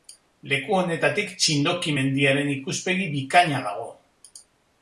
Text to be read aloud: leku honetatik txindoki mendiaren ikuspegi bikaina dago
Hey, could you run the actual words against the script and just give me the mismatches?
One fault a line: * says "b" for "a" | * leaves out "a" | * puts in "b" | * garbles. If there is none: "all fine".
all fine